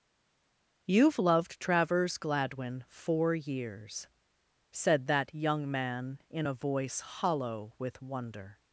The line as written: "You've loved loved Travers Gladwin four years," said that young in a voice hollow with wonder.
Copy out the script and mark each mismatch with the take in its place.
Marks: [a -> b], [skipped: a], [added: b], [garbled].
"You've loved [skipped: loved] Travers Gladwin four years," said that young [added: man] in a voice hollow with wonder.